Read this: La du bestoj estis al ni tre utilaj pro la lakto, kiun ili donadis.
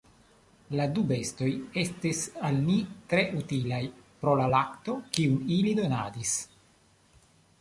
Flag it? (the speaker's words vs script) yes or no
no